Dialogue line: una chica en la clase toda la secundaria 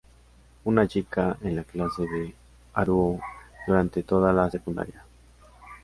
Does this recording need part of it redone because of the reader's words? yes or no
yes